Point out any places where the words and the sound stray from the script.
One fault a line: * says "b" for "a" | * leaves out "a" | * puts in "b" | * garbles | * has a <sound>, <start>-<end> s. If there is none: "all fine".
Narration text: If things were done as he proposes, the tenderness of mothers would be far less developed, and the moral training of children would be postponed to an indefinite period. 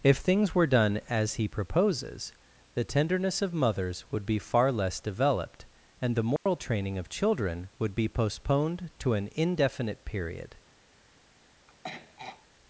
* has a dropout, 6.4-6.5 s
* has a throat clearing, 11.7-12.5 s